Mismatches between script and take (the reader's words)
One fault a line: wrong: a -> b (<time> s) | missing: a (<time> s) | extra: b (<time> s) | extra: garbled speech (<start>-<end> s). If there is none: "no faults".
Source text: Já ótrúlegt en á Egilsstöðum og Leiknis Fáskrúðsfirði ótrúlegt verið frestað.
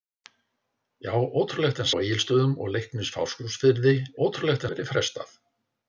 no faults